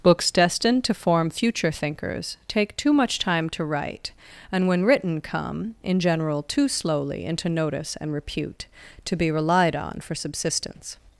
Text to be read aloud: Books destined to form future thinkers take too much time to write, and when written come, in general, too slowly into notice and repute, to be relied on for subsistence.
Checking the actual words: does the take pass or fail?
pass